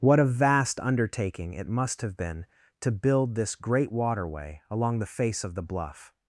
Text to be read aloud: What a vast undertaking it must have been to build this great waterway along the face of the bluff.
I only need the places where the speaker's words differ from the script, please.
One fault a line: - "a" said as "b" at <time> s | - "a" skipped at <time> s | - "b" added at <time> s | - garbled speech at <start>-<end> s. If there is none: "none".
none